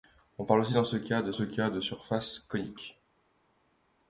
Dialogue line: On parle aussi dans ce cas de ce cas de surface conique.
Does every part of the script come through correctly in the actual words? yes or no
yes